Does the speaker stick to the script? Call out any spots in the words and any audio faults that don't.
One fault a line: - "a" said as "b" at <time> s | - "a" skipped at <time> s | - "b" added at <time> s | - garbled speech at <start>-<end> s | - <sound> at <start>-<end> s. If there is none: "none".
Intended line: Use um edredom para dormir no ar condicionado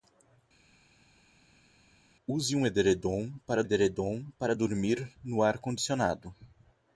- "edredom para" added at 3.6 s